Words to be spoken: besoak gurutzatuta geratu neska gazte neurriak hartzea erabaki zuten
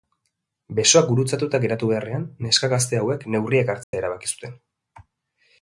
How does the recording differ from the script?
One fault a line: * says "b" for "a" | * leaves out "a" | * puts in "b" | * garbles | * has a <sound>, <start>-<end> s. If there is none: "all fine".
* puts in "beharrean"
* puts in "hauek"
* has a dropout, 3.8-3.9 s